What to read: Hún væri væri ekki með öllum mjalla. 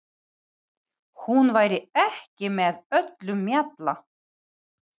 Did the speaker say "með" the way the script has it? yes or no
yes